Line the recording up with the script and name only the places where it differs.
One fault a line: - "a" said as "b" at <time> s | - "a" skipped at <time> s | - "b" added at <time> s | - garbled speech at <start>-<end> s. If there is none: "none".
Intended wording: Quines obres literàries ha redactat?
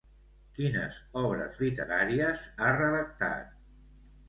none